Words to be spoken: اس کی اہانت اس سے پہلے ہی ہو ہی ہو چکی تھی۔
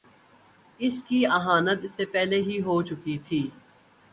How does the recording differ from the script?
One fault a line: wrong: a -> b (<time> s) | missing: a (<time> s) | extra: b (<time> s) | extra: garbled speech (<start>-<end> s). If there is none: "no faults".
missing: ہی ہو (2.8 s)